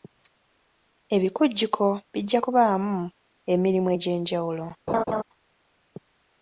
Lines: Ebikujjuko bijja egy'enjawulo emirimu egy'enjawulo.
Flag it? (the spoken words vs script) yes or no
yes